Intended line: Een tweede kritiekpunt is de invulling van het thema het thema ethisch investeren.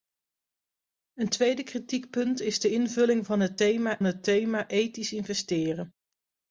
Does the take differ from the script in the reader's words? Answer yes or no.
no